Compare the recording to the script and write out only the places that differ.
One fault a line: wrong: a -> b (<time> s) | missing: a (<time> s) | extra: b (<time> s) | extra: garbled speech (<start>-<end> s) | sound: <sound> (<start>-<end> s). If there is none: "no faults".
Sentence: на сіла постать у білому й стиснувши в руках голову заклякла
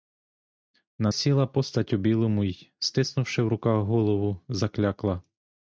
no faults